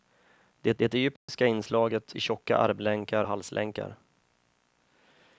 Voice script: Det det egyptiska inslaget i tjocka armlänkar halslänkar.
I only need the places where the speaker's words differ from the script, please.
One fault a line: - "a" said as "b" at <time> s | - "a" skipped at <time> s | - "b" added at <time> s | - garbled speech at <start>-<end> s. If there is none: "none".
none